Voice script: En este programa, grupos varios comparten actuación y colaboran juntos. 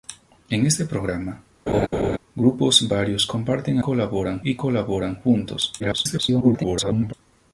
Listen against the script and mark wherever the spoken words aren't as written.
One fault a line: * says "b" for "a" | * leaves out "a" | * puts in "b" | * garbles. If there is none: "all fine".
* says "colaboran" for "actuación"
* garbles